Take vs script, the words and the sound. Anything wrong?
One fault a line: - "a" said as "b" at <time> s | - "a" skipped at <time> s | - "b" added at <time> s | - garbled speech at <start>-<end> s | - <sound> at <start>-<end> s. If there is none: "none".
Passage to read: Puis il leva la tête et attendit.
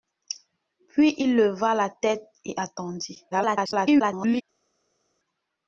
- garbled speech at 3.3-4.4 s